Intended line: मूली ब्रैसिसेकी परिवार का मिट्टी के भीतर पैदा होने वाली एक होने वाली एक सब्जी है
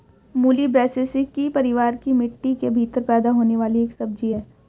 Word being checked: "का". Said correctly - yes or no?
no